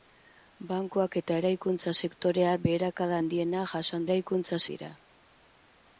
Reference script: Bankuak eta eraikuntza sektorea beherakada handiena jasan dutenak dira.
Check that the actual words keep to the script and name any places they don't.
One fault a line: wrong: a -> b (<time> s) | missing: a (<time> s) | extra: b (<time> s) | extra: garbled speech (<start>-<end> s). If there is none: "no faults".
wrong: dutenak -> eraikuntza (4.1 s)